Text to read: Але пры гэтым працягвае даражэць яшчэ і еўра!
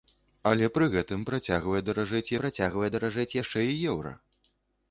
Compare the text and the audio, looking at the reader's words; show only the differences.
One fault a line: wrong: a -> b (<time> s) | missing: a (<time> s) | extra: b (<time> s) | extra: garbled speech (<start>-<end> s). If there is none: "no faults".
extra: працягвае даражэць (2.4 s)